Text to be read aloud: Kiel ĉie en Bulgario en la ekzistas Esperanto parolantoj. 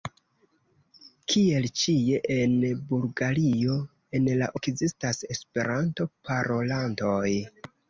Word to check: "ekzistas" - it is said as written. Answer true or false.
true